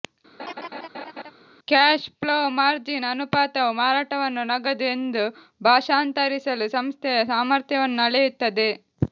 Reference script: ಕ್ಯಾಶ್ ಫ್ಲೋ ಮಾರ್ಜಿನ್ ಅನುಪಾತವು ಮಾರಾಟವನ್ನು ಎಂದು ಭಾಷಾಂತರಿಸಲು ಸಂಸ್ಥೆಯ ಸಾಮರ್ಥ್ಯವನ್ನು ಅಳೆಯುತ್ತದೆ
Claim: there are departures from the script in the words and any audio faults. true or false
true